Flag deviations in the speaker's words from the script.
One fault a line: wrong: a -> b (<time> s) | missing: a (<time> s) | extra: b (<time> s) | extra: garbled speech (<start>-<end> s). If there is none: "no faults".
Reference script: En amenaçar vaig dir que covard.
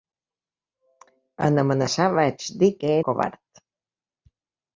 no faults